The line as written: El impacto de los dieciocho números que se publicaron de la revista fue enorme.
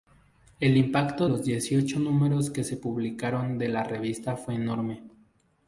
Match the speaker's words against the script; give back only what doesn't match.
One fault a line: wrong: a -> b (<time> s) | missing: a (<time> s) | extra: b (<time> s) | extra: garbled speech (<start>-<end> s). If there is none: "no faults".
missing: de (1.3 s)